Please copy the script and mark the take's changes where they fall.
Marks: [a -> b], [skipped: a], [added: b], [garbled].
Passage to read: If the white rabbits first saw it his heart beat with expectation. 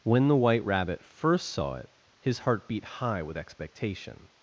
[If -> When] the white [rabbits -> rabbit] first saw it his heart beat [added: high] with expectation.